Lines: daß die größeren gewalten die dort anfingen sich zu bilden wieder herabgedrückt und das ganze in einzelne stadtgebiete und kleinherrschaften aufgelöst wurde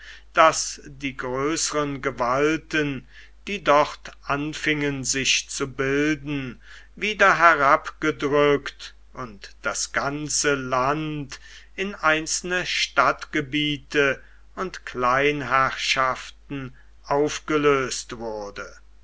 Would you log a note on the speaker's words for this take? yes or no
yes